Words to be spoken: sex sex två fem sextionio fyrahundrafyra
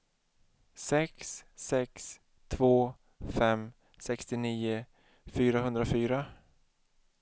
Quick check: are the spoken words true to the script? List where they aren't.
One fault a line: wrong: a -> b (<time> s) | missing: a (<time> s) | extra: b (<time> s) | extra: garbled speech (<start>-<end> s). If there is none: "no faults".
no faults